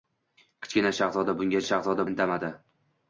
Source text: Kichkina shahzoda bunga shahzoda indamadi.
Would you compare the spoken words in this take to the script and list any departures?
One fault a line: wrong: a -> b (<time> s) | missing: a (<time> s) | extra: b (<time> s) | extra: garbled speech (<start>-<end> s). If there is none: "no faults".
no faults